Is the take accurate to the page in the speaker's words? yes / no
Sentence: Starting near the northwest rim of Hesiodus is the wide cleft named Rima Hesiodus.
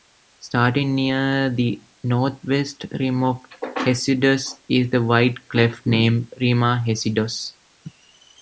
yes